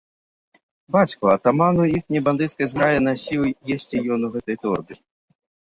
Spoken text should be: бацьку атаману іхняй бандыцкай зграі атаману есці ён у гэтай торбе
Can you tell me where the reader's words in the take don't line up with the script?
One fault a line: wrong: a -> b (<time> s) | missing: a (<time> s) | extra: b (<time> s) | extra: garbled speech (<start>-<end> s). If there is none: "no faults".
wrong: атаману -> насіў (3.1 s)